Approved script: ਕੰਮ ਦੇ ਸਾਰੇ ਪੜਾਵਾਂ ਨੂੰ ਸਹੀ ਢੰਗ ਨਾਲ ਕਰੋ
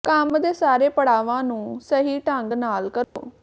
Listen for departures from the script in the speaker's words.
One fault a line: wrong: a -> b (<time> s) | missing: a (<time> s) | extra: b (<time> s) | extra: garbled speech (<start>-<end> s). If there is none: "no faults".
no faults